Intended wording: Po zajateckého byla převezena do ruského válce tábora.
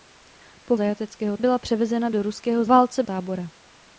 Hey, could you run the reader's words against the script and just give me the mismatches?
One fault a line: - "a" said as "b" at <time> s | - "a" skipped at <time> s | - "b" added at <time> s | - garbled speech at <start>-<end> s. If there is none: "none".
none